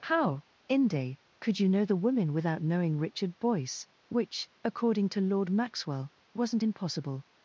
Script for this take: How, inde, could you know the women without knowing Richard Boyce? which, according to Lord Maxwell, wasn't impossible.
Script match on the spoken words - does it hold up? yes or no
yes